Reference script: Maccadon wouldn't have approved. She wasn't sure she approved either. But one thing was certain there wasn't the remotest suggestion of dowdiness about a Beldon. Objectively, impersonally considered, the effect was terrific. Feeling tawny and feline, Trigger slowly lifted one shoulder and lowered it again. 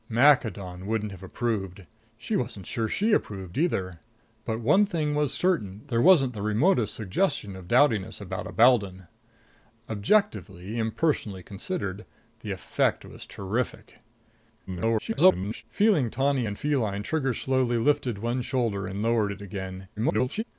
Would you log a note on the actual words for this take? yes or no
yes